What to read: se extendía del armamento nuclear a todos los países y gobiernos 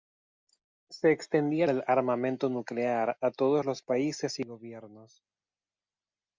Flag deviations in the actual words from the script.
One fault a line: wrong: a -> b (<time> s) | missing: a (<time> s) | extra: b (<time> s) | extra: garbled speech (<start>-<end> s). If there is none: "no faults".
no faults